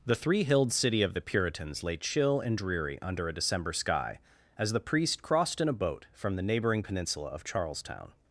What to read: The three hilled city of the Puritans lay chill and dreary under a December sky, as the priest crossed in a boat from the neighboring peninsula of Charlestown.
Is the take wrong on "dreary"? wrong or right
right